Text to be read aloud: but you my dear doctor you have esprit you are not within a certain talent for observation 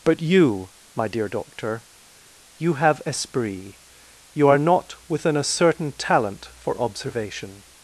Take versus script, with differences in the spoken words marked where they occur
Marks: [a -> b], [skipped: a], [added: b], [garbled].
but you my dear doctor you have esprit you are not within a certain talent for observation